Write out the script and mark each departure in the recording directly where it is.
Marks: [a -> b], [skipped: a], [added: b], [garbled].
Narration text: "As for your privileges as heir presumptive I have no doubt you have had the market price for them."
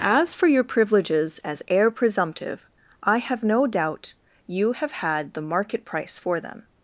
"As for your privileges as heir presumptive I have no doubt you have had the market price for them."